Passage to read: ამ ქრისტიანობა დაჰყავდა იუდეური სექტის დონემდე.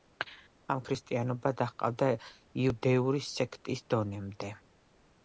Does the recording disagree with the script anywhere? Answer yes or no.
no